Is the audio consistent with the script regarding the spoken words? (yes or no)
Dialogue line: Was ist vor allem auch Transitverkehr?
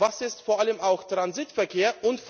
yes